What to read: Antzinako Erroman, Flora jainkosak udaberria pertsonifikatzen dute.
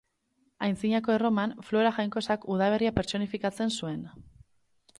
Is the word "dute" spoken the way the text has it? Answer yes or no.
no